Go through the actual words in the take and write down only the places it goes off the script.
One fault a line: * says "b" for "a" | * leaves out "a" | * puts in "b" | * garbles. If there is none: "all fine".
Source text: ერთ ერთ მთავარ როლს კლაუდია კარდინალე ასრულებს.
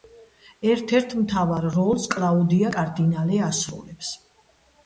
all fine